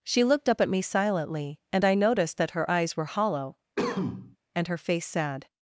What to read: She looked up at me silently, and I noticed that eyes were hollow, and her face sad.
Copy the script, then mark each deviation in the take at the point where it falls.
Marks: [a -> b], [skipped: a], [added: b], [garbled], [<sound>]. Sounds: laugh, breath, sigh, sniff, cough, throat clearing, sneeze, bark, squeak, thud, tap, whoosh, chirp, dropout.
She looked up at me silently, and I noticed that [added: her] eyes were hollow, [cough] and her face sad.